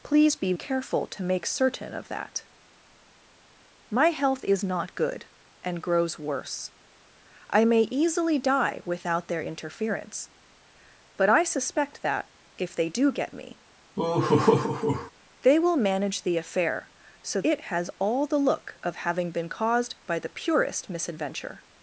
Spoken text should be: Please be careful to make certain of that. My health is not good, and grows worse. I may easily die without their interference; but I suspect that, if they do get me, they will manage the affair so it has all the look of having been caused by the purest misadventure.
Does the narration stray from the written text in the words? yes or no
no